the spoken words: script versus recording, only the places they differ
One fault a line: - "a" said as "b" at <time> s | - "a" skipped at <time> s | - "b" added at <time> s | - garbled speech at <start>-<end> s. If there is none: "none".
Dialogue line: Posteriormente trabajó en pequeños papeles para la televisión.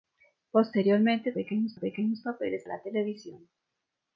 - "trabajó" said as "pequeños" at 1.3 s
- "para" skipped at 2.6 s